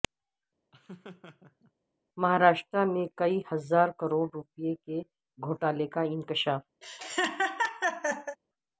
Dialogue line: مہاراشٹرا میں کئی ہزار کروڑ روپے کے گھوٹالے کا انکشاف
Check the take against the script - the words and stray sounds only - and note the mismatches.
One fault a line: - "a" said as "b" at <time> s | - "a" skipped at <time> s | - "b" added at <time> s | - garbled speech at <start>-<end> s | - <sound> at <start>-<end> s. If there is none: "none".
- laugh at 0.7-1.7 s
- laugh at 6.8-8.4 s